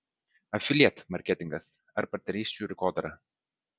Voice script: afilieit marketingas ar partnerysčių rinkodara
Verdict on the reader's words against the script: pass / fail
pass